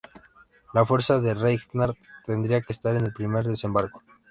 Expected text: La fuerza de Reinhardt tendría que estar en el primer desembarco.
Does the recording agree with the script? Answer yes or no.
yes